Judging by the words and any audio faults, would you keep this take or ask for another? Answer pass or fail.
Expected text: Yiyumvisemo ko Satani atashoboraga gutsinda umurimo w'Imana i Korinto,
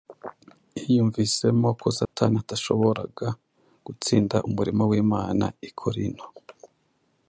fail